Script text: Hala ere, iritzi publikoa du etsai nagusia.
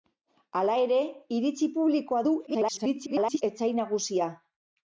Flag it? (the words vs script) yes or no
yes